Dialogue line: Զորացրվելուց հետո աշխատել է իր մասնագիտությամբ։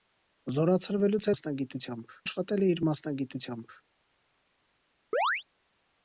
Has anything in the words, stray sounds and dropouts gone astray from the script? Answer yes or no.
yes